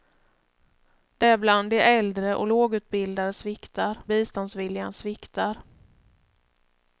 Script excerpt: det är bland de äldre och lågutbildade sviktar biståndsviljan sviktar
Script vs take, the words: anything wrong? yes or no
no